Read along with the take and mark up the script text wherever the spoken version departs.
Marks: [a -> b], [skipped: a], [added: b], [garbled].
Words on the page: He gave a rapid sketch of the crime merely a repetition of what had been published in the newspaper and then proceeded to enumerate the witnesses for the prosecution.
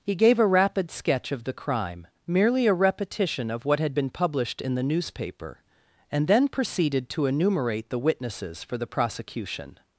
He gave a rapid sketch of the crime merely a repetition of what had been published in the newspaper and then proceeded to enumerate the witnesses for the prosecution.